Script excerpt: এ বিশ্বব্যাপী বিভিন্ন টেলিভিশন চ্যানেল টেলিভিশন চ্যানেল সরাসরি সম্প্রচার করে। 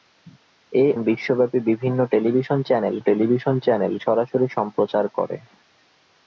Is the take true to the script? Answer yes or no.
yes